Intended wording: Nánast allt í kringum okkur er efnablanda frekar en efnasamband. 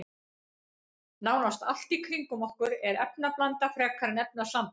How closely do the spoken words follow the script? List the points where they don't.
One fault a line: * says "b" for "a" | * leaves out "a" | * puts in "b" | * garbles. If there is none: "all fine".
all fine